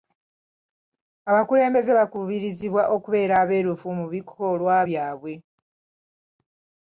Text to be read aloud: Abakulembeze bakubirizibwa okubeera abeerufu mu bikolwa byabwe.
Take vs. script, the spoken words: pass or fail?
pass